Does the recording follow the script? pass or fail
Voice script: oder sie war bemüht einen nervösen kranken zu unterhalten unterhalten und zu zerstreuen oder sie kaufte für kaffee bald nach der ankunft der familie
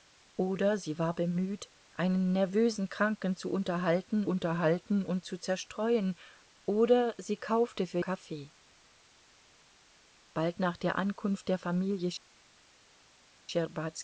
pass